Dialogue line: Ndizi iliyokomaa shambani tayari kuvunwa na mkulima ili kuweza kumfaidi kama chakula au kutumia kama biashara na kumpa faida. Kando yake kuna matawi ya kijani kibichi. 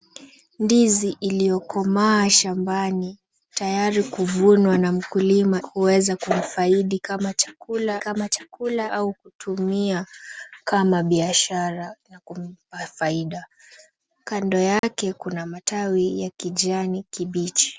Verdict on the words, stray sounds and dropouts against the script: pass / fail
fail